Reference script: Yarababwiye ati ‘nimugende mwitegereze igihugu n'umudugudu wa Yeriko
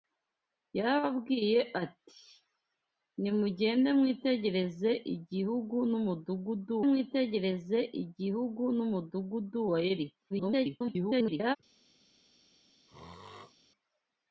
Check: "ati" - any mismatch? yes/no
no